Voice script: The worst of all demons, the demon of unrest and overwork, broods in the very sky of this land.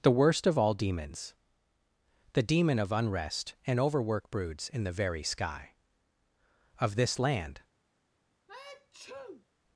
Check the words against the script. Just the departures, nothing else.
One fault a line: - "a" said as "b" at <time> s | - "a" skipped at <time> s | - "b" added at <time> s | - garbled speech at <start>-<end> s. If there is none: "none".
none